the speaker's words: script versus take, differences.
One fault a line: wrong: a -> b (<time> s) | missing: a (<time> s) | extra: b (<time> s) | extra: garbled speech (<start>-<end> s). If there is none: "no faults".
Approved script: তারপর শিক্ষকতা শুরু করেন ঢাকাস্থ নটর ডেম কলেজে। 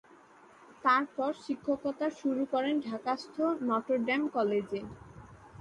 no faults